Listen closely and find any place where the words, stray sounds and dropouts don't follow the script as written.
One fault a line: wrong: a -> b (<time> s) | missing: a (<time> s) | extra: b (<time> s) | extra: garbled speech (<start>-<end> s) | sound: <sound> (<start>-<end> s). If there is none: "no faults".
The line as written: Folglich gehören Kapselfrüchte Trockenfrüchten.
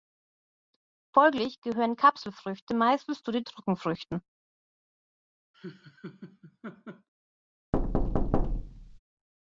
extra: meistens zu den (2.7 s)
sound: laugh (5.5-7.1 s)
sound: thud (7.7-9.0 s)